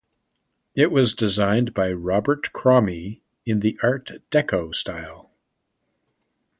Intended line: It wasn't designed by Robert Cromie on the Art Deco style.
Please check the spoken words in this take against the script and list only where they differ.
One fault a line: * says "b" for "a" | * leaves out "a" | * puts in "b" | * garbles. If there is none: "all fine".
* says "was" for "wasn't"
* says "in" for "on"